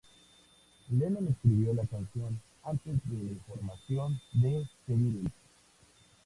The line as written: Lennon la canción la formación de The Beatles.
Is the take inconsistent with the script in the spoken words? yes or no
yes